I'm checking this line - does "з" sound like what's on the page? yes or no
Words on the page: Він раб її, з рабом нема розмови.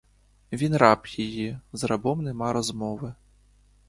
yes